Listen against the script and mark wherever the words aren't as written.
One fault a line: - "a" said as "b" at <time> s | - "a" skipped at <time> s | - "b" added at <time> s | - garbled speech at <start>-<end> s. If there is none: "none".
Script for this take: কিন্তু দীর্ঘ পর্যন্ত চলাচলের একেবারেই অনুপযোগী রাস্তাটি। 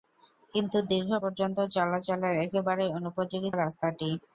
none